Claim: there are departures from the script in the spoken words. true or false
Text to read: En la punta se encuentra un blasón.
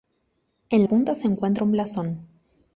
true